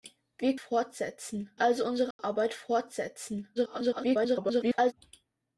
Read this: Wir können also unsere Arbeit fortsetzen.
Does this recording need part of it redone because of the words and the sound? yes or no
yes